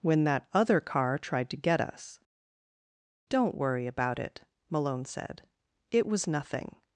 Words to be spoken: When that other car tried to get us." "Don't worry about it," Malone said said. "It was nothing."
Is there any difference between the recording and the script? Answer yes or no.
yes